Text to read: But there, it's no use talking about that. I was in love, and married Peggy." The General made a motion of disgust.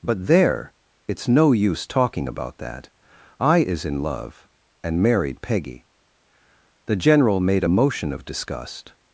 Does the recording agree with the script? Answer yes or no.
no